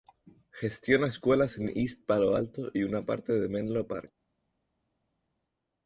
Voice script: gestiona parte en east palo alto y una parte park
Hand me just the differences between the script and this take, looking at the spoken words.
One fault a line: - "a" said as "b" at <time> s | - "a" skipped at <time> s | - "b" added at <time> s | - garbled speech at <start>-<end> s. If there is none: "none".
- "parte" said as "escuelas" at 1.1 s
- "de menlo" added at 3.4 s